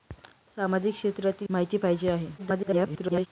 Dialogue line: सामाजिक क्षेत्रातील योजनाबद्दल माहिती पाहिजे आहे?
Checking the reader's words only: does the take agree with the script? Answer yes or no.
no